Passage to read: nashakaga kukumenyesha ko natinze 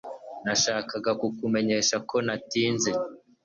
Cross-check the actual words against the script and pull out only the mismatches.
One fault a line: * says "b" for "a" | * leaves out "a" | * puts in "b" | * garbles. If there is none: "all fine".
all fine